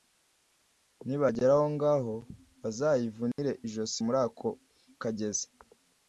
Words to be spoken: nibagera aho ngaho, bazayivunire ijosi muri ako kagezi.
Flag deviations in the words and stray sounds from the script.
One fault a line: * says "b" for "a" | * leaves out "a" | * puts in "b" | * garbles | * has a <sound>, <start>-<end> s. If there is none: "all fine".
* has a dropout, 3.3-3.4 s